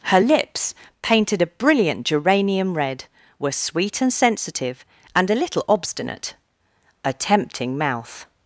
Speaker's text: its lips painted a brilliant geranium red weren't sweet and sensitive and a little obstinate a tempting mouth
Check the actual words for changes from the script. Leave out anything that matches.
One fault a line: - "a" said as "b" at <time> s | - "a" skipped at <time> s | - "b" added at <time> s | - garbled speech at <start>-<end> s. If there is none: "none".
- "its" said as "her" at 0.0 s
- "weren't" said as "were" at 3.4 s